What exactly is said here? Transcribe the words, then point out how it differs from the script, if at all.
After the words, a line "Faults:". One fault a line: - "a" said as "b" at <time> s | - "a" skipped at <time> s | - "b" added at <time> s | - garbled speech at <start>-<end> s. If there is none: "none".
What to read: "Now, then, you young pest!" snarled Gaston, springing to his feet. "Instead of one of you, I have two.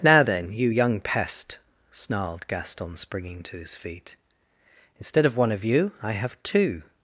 "Now, then, you young pest!" snarled Gaston, springing to his feet. "Instead of one of you, I have two.
Faults:
none